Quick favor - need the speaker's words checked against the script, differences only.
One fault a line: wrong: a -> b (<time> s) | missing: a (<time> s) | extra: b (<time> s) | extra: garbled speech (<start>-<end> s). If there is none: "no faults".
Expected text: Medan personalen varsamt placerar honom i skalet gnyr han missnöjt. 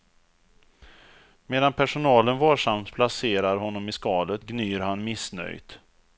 no faults